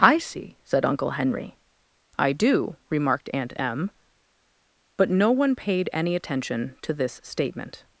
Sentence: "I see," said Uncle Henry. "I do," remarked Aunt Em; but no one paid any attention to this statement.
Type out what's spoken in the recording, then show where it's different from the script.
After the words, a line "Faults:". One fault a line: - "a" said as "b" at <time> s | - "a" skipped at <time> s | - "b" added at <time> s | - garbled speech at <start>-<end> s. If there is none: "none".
"I see," said Uncle Henry. "I do," remarked Aunt Em; but no one paid any attention to this statement.
Faults:
none